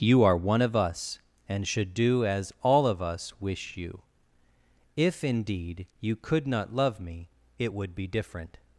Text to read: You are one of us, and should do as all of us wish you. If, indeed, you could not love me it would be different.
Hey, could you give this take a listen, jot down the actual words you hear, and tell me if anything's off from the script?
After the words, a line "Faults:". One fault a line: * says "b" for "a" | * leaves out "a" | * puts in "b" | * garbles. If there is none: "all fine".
You are one of us, and should do as all of us wish you. If, indeed, you could not love me it would be different.
Faults:
all fine